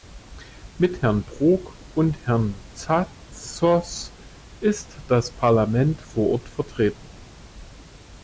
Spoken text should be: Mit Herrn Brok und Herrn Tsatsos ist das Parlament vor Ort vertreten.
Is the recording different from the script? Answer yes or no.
no